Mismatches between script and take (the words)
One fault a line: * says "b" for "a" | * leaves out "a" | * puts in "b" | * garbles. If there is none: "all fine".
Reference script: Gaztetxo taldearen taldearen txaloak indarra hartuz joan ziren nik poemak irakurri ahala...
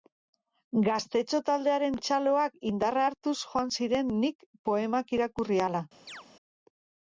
* leaves out "taldearen"